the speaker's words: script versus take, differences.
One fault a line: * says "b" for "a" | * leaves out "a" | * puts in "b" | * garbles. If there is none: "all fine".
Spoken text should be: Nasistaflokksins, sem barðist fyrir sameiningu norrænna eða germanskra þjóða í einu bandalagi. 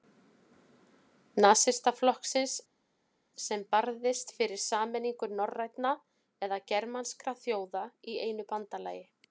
all fine